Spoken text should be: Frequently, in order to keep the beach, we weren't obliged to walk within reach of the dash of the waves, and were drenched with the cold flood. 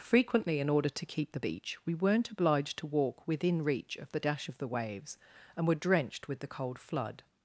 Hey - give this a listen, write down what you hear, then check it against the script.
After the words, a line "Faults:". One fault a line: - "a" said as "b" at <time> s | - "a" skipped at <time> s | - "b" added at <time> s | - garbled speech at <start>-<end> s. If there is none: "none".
Frequently, in order to keep the beach, we weren't obliged to walk within reach of the dash of the waves, and were drenched with the cold flood.
Faults:
none